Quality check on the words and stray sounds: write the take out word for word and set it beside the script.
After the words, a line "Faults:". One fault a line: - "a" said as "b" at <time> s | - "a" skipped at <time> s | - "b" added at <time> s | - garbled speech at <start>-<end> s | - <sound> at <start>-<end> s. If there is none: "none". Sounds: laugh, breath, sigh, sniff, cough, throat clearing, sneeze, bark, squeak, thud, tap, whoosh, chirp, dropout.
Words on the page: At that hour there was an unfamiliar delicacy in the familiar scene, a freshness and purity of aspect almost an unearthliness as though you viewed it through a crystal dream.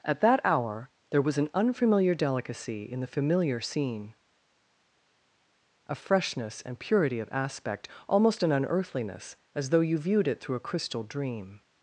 At that hour there was an unfamiliar delicacy in the familiar scene, a freshness and purity of aspect almost an unearthliness as though you viewed it through a crystal dream.
Faults:
none